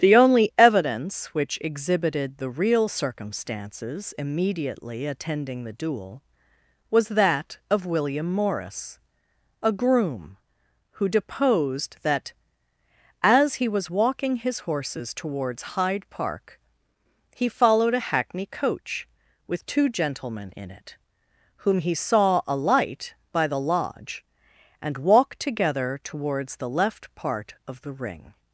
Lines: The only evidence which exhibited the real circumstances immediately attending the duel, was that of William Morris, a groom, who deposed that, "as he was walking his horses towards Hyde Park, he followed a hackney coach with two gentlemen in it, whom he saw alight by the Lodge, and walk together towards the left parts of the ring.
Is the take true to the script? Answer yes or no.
no